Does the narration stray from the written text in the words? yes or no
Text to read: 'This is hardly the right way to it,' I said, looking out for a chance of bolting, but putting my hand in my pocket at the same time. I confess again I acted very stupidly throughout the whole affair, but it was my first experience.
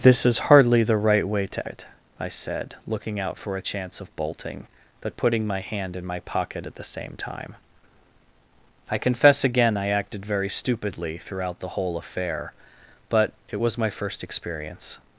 no